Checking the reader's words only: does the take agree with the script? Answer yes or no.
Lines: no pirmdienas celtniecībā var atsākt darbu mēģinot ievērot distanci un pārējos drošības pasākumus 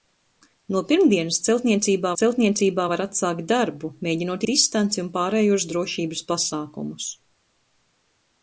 no